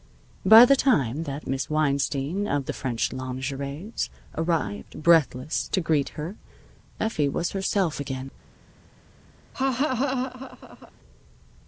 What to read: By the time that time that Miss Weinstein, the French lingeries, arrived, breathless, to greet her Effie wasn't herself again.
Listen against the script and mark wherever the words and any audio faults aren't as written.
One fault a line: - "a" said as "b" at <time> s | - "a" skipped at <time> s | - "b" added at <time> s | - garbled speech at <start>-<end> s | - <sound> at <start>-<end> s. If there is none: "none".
- "time that" skipped at 1.4 s
- "of" added at 2.5 s
- "wasn't" said as "was" at 7.3 s
- laugh at 9.5-10.9 s